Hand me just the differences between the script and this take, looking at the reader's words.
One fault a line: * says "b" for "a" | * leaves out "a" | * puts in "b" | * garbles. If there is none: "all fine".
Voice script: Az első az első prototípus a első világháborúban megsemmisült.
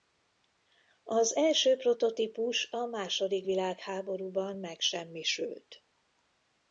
* leaves out "az első"
* says "második" for "első"